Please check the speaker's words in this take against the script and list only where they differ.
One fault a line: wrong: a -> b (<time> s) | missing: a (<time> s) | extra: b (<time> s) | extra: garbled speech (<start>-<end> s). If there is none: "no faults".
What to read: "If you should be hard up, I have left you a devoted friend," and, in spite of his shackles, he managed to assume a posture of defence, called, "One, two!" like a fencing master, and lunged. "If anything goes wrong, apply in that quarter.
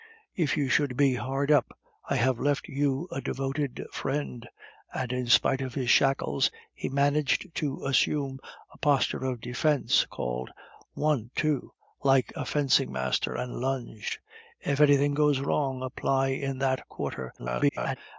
extra: garbled speech (17.4-18.0 s)